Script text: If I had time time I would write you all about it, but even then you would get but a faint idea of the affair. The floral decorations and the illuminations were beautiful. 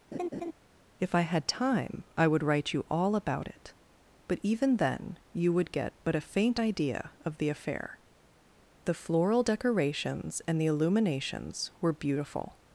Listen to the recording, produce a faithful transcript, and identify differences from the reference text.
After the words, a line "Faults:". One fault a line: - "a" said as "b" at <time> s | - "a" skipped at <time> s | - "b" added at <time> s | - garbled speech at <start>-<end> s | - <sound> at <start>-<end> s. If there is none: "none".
If I had time I would write you all about it, but even then you would get but a faint idea of the affair. The floral decorations and the illuminations were beautiful.
Faults:
- laugh at 0.1-0.5 s
- "time" skipped at 2.1 s